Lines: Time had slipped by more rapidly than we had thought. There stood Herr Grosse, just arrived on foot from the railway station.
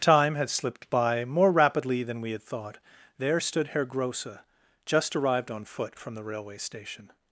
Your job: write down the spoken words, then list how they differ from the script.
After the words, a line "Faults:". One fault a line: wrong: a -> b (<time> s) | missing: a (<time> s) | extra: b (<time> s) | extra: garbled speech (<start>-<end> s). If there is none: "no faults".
Time had slipped by more rapidly than we had thought. There stood Herr Grosse, just arrived on foot from the railway station.
Faults:
no faults